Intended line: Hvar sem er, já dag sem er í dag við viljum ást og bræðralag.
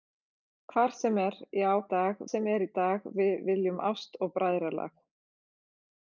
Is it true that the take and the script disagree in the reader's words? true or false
false